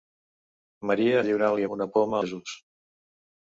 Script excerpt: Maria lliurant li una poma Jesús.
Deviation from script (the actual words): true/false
false